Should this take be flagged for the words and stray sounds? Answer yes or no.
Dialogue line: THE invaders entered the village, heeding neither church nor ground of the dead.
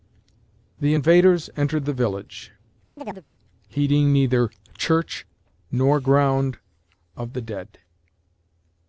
yes